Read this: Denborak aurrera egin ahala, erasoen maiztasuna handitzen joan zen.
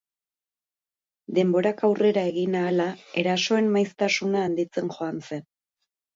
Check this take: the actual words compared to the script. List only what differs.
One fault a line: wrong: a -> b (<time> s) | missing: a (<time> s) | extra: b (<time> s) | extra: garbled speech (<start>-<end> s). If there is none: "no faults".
no faults